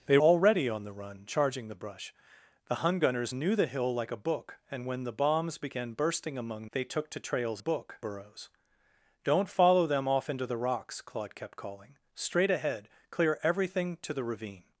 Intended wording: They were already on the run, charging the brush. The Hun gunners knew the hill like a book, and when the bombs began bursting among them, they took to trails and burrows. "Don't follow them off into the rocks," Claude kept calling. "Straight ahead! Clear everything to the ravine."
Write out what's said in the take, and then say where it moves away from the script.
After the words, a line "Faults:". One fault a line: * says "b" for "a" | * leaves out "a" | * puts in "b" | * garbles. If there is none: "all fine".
They already on the run, charging the brush. The Hun gunners knew the hill like a book, and when the bombs began bursting among they took to trails book burrows. "Don't follow them off into the rocks," Claude kept calling. "Straight ahead! Clear everything to the ravine."
Faults:
* leaves out "were"
* leaves out "them"
* says "book" for "and"